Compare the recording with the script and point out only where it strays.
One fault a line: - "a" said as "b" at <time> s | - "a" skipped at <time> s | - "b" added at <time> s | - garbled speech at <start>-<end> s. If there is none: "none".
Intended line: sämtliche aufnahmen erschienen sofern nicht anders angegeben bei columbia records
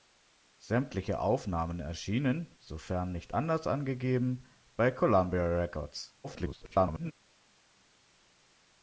- garbled speech at 6.2-7.1 s